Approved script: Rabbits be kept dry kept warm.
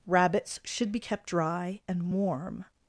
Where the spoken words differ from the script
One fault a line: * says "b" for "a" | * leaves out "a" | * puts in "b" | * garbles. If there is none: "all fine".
* puts in "should"
* says "and" for "kept"